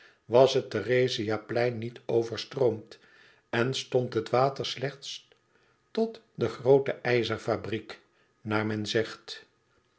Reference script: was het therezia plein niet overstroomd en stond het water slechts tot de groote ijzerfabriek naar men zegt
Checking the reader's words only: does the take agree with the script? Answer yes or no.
yes